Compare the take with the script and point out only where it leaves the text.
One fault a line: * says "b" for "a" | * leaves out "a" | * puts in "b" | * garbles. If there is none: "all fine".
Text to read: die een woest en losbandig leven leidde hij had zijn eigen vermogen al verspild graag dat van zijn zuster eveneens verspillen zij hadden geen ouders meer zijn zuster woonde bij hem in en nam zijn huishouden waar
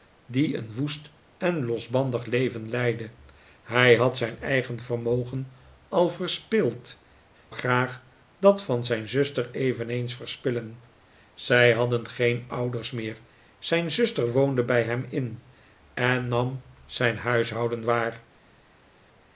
all fine